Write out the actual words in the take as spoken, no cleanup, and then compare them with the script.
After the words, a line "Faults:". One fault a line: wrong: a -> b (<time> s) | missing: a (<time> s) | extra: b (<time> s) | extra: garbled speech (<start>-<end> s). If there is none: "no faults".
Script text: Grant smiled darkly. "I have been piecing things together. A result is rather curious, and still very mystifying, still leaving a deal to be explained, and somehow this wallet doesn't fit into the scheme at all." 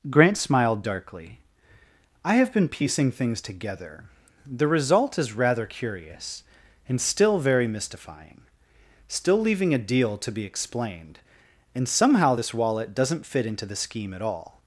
Grant smiled darkly. "I have been piecing things together. The result is rather curious, and still very mystifying, still leaving a deal to be explained, and somehow this wallet doesn't fit into the scheme at all."
Faults:
wrong: A -> The (4.5 s)